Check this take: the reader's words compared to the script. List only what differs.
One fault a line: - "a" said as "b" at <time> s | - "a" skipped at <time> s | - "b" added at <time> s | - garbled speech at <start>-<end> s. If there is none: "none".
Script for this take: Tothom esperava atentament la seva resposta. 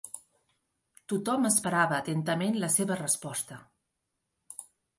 none